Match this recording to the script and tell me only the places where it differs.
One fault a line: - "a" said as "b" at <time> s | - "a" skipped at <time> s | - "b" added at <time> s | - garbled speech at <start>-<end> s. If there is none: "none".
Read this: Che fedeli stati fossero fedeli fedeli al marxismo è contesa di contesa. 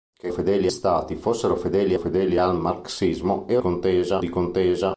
none